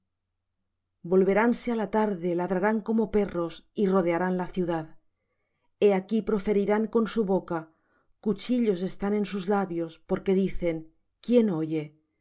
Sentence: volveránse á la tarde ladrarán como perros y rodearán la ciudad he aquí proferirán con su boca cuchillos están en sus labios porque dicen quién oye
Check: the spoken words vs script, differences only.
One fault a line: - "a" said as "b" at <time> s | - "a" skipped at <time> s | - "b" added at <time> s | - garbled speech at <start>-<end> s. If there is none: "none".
none